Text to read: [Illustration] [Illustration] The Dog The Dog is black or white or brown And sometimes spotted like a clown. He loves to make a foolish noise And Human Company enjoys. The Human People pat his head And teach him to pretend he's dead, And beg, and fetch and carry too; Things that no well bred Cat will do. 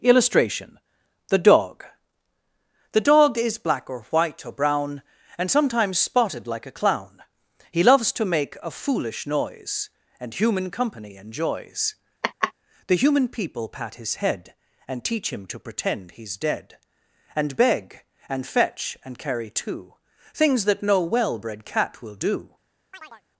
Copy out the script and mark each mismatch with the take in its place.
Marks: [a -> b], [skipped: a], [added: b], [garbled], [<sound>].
[Illustration] [skipped: [Illustration]] The Dog The Dog is black or white or brown And sometimes spotted like a clown. He loves to make a foolish noise And Human Company enjoys. [laugh] The Human People pat his head And teach him to pretend he's dead, And beg, and fetch and carry too; Things that no well bred Cat will do. [chirp]